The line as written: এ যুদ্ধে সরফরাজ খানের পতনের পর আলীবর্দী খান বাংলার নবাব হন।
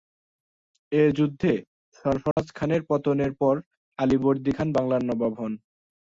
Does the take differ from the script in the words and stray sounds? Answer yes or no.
yes